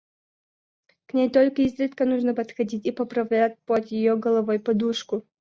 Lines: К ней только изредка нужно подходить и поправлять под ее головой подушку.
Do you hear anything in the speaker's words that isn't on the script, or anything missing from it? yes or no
no